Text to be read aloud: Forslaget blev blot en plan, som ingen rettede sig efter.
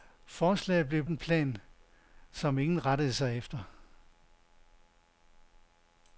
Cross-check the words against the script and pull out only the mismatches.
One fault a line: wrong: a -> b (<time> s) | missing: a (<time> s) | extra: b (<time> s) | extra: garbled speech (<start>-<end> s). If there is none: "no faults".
missing: blot (1.1 s)